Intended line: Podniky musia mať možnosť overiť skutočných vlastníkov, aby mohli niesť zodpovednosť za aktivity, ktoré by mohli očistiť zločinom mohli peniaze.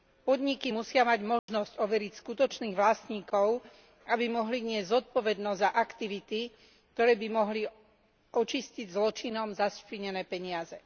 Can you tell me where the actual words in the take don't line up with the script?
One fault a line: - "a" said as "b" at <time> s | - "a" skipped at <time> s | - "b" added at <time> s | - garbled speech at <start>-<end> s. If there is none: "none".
- "mohli" said as "zašpinené" at 9.5 s